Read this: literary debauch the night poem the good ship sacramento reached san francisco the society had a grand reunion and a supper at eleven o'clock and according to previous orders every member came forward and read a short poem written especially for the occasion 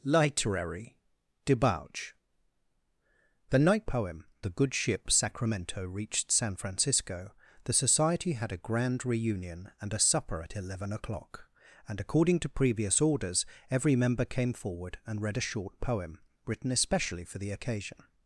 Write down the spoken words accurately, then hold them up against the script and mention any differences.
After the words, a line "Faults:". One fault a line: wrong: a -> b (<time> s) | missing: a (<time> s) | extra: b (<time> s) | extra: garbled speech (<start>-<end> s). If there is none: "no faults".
literary debauch the night poem the good ship sacramento reached san francisco the society had a grand reunion and a supper at eleven o'clock and according to previous orders every member came forward and read a short poem written especially for the occasion
Faults:
no faults